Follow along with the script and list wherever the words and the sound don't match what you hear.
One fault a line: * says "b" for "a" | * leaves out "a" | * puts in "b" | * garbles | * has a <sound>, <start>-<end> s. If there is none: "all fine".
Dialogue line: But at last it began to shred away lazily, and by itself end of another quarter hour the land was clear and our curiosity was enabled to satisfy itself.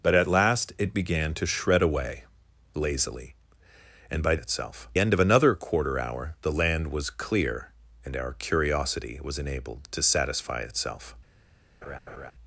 * has a laugh, 11.8-12.3 s